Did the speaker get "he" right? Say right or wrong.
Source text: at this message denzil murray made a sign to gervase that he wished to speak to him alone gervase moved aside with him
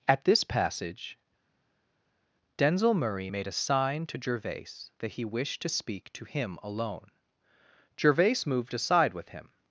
right